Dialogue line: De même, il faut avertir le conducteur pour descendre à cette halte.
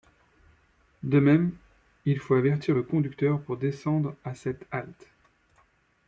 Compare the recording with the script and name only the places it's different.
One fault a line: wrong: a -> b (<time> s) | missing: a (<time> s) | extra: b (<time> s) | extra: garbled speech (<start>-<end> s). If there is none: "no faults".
no faults